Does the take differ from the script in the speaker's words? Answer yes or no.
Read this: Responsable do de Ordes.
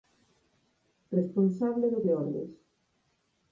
no